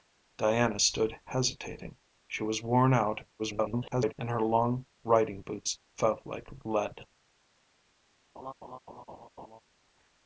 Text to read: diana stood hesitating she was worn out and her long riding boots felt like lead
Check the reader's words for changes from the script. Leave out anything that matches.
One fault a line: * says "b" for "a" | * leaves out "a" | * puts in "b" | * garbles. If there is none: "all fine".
* garbles